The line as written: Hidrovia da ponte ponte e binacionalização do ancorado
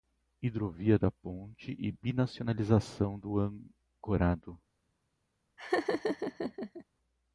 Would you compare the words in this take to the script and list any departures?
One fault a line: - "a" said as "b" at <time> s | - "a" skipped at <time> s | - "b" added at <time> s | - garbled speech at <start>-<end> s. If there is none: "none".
- "ponte" skipped at 1.8 s